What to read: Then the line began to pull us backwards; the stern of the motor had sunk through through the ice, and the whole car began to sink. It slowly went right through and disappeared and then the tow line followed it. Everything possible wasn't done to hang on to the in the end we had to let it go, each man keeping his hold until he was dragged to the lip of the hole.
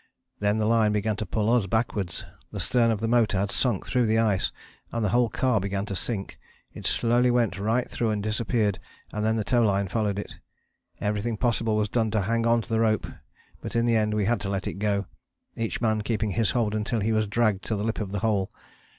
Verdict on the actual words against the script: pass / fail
fail